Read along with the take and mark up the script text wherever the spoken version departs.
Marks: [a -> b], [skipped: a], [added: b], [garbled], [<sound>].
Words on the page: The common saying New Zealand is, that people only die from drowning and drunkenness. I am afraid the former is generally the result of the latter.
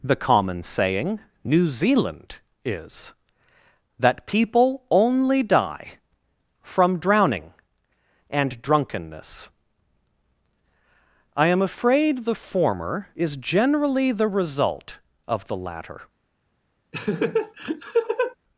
The common saying New Zealand is, that people only die from drowning and drunkenness. I am afraid the former is generally the result of the latter. [laugh]